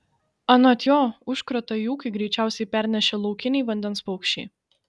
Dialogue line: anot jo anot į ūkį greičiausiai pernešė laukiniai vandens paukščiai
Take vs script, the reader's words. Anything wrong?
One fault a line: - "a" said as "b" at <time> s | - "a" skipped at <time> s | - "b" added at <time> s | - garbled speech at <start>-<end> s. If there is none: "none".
- "anot" said as "užkratą" at 1.3 s